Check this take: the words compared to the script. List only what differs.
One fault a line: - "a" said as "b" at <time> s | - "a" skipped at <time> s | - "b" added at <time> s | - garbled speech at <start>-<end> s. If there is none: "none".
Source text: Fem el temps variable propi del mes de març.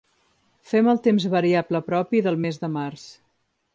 none